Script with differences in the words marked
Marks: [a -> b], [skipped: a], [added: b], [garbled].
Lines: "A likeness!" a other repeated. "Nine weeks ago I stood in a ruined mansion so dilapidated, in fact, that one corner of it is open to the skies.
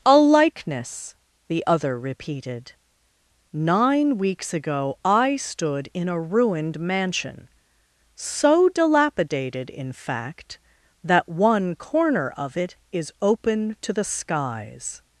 "A likeness!" [a -> the] other repeated. "Nine weeks ago I stood in a ruined mansion so dilapidated, in fact, that one corner of it is open to the skies.